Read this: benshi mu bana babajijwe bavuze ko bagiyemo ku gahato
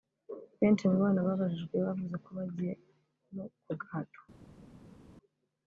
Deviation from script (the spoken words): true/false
false